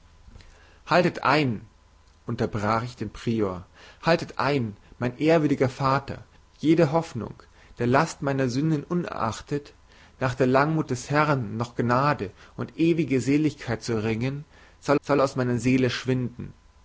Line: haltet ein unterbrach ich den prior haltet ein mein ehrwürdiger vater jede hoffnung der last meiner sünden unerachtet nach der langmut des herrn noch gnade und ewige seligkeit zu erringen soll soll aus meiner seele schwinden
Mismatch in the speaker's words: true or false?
false